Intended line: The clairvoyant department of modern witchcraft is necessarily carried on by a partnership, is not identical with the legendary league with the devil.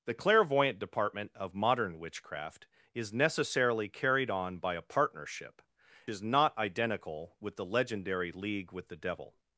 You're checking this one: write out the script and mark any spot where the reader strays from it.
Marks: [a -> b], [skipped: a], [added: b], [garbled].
The clairvoyant department of modern witchcraft is necessarily carried on by a partnership, is not identical with the legendary league with the devil.